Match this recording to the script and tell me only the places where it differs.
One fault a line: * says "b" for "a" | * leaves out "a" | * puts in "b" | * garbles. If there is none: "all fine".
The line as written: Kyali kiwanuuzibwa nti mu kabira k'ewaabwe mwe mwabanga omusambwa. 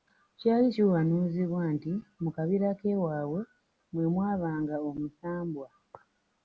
all fine